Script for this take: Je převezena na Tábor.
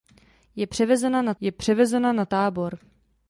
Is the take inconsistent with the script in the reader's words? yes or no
yes